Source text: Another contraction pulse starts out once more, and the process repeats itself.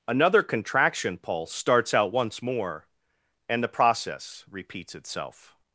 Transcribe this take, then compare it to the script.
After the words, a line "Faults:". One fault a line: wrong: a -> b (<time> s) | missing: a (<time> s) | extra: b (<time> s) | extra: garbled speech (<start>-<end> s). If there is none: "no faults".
Another contraction pulse starts out once more, and the process repeats itself.
Faults:
no faults